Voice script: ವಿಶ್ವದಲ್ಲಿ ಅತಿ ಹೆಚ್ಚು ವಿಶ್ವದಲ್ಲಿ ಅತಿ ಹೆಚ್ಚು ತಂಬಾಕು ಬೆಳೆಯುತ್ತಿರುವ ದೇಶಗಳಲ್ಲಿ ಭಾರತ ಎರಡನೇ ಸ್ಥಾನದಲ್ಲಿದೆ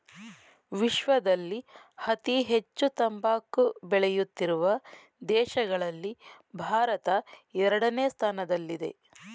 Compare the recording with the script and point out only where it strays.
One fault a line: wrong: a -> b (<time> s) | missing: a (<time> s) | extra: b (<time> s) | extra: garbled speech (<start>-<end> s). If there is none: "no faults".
missing: ವಿಶ್ವದಲ್ಲಿ ಅತಿ ಹೆಚ್ಚು (2.9 s)